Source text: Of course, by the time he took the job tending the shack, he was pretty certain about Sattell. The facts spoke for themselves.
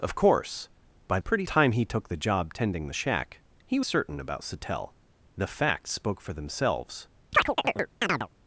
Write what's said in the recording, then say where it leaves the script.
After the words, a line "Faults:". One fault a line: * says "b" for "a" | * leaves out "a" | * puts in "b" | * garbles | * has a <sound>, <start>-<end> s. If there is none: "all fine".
Of course, by pretty time he took the job tending the shack, he certain about Sattell. The facts spoke for themselves.
Faults:
* says "pretty" for "the"
* leaves out "was pretty"
* has a chirp, 7.3-8.3 s